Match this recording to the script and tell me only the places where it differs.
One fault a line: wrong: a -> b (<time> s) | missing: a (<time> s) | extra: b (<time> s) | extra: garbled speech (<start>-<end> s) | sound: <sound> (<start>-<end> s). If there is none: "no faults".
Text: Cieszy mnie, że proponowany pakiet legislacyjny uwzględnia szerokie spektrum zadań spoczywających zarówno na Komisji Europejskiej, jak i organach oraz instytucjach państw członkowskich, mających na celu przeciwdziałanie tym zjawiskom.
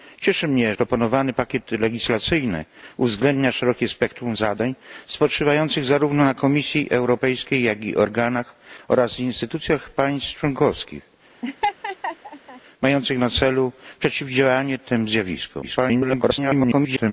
missing: że (0.8 s)
sound: laugh (11.4-12.6 s)
extra: garbled speech (15.6-17.1 s)